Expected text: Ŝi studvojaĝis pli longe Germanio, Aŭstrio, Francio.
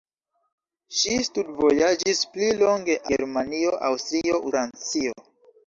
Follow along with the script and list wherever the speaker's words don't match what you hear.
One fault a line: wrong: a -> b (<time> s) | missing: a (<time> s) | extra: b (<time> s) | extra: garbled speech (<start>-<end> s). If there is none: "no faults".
no faults